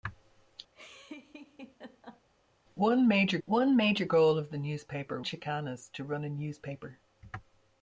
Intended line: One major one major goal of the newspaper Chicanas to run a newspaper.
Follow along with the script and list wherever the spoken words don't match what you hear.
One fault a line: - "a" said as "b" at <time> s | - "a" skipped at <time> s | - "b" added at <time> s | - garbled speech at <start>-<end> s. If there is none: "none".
none